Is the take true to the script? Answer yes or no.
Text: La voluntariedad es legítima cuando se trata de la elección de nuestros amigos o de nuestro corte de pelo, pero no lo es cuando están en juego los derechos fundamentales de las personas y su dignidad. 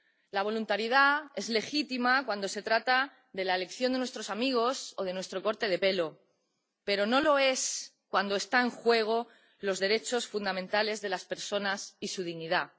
yes